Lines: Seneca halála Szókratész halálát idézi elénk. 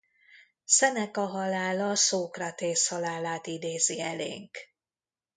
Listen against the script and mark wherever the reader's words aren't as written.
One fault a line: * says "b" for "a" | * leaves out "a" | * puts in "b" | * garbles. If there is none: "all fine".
all fine